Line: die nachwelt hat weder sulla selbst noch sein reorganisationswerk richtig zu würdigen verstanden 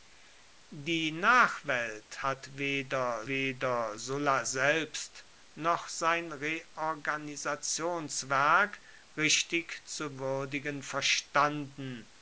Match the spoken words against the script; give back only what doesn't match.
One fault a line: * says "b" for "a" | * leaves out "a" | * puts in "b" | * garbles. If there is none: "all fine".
* puts in "weder"